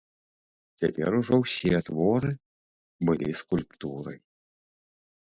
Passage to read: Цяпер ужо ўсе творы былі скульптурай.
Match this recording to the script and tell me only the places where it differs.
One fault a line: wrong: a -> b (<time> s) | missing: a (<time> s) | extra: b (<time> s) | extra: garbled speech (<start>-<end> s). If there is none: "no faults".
no faults